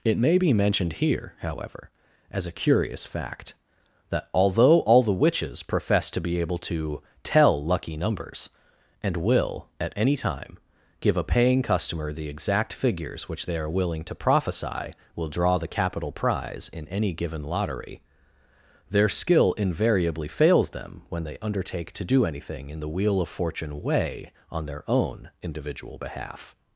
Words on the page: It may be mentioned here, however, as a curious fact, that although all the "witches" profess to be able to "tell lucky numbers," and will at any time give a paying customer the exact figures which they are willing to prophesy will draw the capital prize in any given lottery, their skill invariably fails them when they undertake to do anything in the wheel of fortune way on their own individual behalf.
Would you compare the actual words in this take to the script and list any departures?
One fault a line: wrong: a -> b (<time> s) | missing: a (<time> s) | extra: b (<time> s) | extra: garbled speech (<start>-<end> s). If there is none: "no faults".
no faults